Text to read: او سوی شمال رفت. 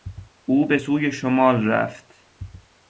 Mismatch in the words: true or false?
true